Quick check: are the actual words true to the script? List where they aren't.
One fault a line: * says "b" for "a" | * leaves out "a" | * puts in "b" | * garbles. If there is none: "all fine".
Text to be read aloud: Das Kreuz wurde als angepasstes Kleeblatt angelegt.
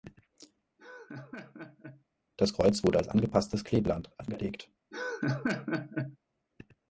all fine